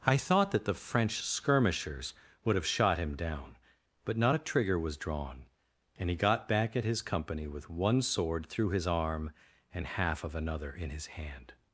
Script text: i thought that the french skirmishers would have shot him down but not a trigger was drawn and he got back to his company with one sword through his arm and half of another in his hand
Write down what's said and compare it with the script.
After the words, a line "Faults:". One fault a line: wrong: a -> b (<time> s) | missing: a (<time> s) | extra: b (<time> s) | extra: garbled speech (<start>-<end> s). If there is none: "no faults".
i thought that the french skirmishers would have shot him down but not a trigger was drawn and he got back at his company with one sword through his arm and half of another in his hand
Faults:
wrong: to -> at (6.8 s)